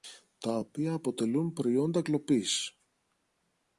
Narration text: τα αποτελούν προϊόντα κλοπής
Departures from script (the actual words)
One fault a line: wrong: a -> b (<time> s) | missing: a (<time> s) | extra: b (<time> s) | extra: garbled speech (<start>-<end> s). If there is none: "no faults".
extra: οποία (0.6 s)